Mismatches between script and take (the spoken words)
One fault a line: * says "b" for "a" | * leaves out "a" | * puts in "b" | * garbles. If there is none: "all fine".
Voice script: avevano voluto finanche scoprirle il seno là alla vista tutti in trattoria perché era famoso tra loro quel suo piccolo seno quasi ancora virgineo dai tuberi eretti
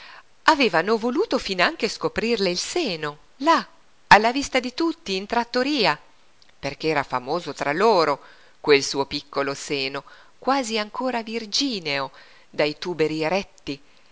* puts in "di"